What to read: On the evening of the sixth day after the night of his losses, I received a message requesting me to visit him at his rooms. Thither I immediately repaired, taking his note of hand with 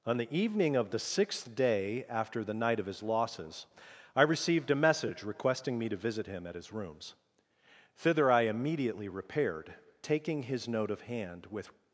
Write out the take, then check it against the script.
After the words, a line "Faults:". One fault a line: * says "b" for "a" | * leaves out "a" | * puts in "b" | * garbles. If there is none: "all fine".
On the evening of the sixth day after the night of his losses, I received a message requesting me to visit him at his rooms. Thither I immediately repaired, taking his note of hand with
Faults:
all fine